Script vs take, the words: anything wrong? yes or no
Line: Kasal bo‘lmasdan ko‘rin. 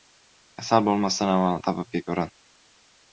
yes